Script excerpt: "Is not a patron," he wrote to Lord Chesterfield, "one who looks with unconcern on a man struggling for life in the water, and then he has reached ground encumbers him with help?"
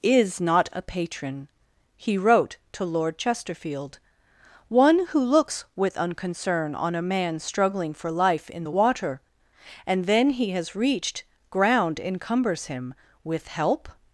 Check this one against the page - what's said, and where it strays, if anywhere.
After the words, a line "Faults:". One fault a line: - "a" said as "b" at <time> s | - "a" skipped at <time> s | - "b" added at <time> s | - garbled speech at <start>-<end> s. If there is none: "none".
"Is not a patron," he wrote to Lord Chesterfield, "one who looks with unconcern on a man struggling for life in the water, and then he has reached ground encumbers him with help?"
Faults:
none